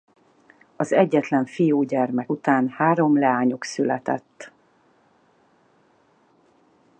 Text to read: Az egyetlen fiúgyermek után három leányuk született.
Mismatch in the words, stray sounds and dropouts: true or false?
false